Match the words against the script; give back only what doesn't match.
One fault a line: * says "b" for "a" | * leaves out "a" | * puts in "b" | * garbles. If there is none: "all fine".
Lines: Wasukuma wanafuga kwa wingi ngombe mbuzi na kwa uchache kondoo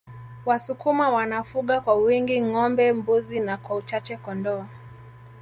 all fine